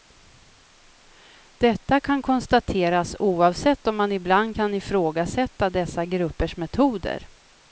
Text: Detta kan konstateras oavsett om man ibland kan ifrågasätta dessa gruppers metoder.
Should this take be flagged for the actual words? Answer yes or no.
no